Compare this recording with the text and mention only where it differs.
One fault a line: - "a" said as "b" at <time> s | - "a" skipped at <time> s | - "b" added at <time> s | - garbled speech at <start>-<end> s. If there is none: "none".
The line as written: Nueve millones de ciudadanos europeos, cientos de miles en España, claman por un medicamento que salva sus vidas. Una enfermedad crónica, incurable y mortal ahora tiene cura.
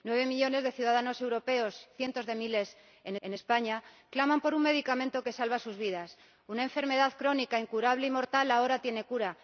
- "en" added at 3.2 s